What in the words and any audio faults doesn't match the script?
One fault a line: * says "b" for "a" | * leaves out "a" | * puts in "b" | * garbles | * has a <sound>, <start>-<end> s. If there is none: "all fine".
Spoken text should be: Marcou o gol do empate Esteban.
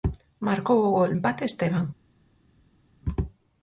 * leaves out "do"